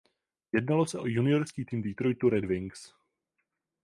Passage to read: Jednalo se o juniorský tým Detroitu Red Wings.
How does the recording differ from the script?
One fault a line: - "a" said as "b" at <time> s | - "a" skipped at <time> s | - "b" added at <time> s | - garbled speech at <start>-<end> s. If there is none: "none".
none